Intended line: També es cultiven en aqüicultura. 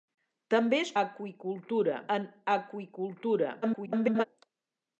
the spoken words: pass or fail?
fail